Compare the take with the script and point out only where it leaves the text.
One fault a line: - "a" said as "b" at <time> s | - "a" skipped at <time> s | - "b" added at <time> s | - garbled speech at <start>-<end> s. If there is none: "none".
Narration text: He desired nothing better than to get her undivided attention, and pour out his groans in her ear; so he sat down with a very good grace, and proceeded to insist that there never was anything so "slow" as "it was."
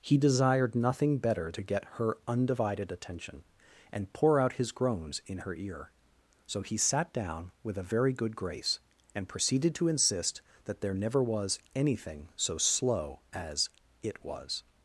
- "than" skipped at 1.5 s